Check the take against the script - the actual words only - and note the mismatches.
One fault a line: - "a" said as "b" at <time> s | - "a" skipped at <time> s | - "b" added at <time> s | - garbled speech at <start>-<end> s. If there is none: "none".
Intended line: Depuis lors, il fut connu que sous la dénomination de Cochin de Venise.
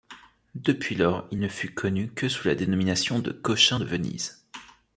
- "ne" added at 1.4 s